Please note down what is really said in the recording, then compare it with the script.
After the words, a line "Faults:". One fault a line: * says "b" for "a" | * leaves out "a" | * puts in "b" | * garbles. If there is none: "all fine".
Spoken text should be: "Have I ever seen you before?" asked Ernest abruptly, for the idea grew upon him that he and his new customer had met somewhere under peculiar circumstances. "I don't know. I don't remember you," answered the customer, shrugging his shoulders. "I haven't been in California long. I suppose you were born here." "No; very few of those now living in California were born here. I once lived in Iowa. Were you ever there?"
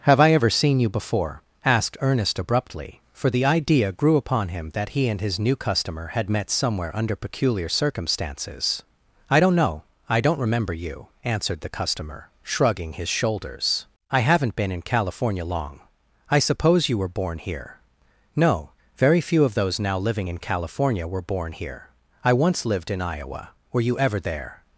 "Have I ever seen you before?" asked Ernest abruptly, for the idea grew upon him that he and his new customer had met somewhere under peculiar circumstances. "I don't know. I don't remember you," answered the customer, shrugging his shoulders. "I haven't been in California long. I suppose you were born here." "No; very few of those now living in California were born here. I once lived in Iowa. Were you ever there?"
Faults:
all fine